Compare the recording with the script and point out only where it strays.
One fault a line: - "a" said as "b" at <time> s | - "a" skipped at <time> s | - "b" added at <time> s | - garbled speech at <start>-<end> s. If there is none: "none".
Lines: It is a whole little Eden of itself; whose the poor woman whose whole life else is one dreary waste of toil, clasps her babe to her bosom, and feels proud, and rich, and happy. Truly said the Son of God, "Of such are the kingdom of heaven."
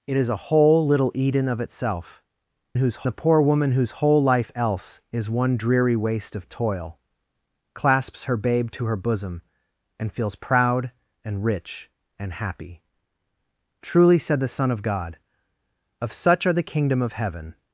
none